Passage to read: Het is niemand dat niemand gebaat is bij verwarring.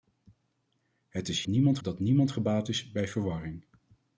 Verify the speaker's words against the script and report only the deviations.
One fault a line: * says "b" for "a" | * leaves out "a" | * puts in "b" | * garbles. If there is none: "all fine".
all fine